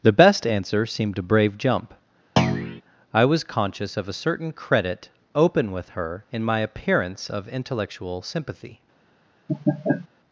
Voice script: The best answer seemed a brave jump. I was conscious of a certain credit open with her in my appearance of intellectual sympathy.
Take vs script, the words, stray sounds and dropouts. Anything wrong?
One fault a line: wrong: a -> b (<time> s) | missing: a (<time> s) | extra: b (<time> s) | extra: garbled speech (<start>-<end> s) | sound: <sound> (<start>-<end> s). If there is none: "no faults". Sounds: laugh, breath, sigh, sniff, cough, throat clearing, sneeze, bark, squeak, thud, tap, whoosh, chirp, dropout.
sound: thud (2.4-2.8 s)
sound: laugh (9.5-10.1 s)